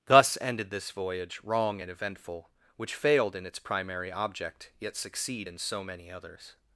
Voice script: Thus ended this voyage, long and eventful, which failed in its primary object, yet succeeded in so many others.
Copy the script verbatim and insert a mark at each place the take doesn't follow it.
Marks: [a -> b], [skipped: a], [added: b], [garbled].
Thus ended this voyage, [long -> wrong] and eventful, which failed in its primary object, yet [succeeded -> succeed] in so many others.